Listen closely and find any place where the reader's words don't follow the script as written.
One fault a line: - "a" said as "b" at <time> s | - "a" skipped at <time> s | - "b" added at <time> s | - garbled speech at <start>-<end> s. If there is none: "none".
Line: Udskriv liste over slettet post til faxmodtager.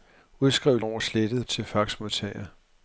- "liste" skipped at 0.8 s
- "post" skipped at 1.5 s